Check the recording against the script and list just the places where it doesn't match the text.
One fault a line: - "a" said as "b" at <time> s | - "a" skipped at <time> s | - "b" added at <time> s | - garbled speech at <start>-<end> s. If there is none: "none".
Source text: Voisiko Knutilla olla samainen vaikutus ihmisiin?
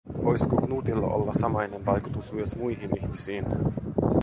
- "myös muihin" added at 2.3 s